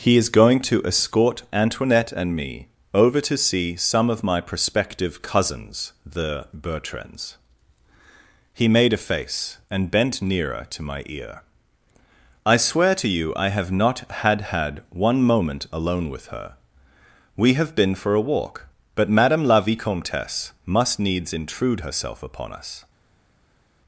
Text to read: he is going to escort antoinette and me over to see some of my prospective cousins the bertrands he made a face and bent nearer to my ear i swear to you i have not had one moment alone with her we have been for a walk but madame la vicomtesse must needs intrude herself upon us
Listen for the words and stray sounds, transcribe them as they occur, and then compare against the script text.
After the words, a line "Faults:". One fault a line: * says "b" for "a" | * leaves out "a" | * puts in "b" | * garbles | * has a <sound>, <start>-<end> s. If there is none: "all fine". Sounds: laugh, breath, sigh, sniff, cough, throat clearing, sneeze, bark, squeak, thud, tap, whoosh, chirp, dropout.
he is going to escort antoinette and me over to see some of my prospective cousins the bertrands he made a face and bent nearer to my ear i swear to you i have not had had one moment alone with her we have been for a walk but madame la vicomtesse must needs intrude herself upon us
Faults:
* puts in "had"